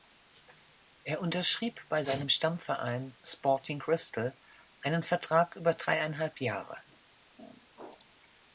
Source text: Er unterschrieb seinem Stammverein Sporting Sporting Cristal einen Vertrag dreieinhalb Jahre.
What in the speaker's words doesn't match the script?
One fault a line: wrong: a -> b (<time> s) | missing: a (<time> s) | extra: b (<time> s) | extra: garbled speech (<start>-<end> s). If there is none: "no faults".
extra: bei (1.9 s)
missing: Sporting (3.8 s)
extra: über (5.6 s)